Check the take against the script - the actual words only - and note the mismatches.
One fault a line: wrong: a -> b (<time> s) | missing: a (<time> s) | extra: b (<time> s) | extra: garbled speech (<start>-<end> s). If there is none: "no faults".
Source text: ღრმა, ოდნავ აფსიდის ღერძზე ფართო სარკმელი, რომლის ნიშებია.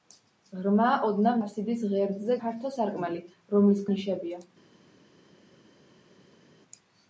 no faults